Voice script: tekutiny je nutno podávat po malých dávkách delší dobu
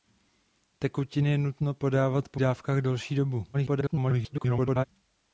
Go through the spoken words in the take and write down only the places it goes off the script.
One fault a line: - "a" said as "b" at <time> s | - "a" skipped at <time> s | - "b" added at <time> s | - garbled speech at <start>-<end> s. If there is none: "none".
- "malých" skipped at 2.4 s
- garbled speech at 3.5-4.8 s